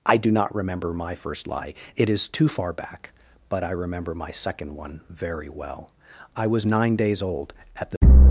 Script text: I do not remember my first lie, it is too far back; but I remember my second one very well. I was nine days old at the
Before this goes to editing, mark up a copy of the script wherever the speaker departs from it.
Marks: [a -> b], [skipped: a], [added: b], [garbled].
I do not remember my first lie, it is too far back; but I remember my second one very well. I was nine days old at the